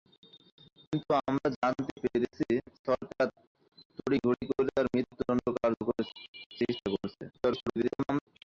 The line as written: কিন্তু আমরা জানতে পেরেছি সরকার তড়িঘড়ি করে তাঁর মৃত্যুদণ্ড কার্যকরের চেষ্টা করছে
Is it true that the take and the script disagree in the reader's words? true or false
true